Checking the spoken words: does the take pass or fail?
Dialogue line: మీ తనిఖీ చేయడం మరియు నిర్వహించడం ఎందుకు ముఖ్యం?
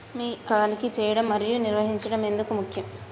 pass